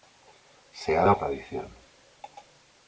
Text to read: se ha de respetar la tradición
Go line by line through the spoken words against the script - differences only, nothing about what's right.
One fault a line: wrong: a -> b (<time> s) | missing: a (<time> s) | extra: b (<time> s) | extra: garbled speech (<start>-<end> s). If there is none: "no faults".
missing: respetar la (1.1 s)